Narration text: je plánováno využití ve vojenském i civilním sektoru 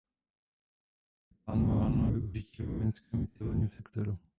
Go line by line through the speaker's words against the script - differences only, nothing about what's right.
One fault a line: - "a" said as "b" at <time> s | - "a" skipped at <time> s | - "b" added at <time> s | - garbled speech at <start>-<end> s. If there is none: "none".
none